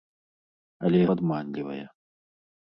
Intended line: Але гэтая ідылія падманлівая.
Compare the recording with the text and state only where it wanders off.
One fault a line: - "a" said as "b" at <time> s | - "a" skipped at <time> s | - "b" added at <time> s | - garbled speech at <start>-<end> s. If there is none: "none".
- "гэтая ідылія" skipped at 1.0 s